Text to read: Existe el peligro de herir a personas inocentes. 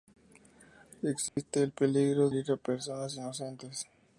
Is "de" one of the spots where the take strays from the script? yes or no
yes